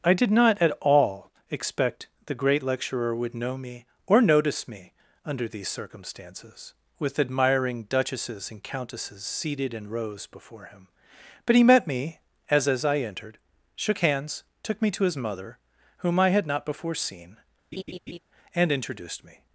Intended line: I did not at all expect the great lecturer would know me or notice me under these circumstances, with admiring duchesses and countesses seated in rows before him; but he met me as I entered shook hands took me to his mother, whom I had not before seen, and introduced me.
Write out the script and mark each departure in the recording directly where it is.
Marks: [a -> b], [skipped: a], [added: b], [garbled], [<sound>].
I did not at all expect the great lecturer would know me or notice me under these circumstances, with admiring duchesses and countesses seated in rows before him; but he met me as [added: as] I entered shook hands took me to his mother, whom I had not before seen, [laugh] and introduced me.